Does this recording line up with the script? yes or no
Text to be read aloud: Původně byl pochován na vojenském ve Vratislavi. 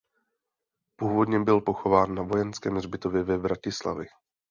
no